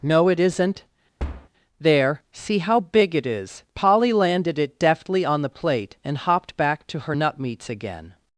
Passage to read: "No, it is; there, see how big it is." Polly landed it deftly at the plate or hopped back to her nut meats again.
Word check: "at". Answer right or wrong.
wrong